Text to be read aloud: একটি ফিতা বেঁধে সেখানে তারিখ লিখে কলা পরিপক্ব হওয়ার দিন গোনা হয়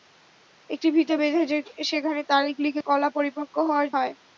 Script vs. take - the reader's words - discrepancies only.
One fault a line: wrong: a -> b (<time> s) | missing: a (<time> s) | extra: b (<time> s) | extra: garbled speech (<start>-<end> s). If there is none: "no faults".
missing: দিন গোনা (3.9 s)